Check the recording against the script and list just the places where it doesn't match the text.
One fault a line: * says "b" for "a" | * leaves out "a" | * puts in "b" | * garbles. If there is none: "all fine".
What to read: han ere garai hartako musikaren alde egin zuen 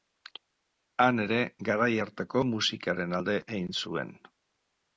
all fine